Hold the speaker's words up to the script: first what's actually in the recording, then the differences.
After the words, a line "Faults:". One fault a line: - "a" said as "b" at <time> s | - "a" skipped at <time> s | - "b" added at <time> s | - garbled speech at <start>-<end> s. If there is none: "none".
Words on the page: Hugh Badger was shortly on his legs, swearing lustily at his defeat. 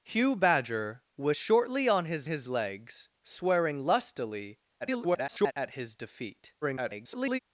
Hugh Badger was shortly on his his legs, swearing lustily [garbled] at his defeat. [garbled]
Faults:
- "his" added at 2.2 s
- garbled speech at 4.8-5.5 s
- garbled speech at 6.6-7.4 s